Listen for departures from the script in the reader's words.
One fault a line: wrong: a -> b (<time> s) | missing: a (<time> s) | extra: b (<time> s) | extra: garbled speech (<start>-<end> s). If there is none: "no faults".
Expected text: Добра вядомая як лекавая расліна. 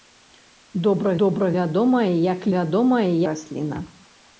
extra: добра (1.2 s)
wrong: лекавая -> вядомая (2.5 s)